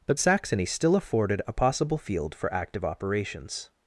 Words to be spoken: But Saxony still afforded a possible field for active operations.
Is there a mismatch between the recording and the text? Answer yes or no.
no